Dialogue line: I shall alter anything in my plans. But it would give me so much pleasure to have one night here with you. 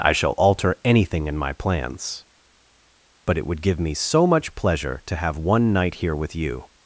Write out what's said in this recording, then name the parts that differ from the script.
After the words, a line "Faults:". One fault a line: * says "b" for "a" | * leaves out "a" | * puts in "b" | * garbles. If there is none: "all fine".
I shall alter anything in my plans. But it would give me so much pleasure to have one night here with you.
Faults:
all fine